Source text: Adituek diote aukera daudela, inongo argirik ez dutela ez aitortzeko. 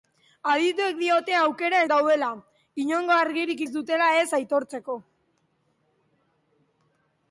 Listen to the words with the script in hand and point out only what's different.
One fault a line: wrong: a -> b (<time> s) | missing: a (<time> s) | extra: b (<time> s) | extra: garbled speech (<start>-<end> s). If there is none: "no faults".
no faults